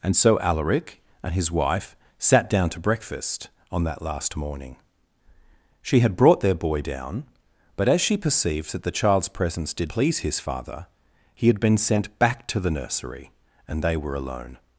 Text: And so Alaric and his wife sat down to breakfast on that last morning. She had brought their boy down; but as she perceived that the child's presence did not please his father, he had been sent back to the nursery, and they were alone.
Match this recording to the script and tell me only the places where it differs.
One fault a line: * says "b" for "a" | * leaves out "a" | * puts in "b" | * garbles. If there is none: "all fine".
* leaves out "not"